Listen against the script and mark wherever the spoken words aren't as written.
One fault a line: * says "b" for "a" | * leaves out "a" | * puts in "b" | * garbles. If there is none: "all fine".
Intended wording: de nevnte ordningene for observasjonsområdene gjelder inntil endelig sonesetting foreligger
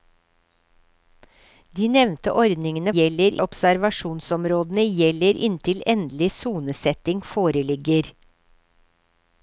* says "gjelder" for "for"